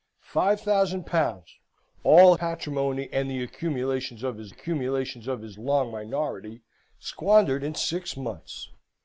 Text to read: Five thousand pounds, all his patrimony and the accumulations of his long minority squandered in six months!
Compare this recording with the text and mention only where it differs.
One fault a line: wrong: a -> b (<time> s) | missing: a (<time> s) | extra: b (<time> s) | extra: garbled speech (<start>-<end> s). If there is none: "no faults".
missing: his (2.3 s)
extra: accumulations of his (4.5 s)